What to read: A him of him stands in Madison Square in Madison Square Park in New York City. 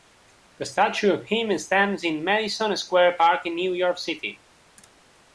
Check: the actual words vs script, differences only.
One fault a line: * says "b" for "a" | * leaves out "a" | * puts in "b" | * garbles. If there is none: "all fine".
* says "statue" for "him"
* leaves out "in Madison Square"